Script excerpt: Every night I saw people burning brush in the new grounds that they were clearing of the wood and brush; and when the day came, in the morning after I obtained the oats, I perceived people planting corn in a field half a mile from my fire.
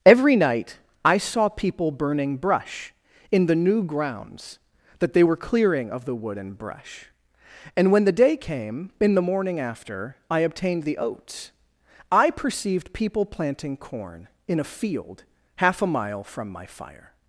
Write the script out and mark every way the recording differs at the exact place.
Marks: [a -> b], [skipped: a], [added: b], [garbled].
Every night I saw people burning brush in the new grounds that they were clearing of the wood and brush; and when the day came, in the morning after I obtained the oats, I perceived people planting corn in a field half a mile from my fire.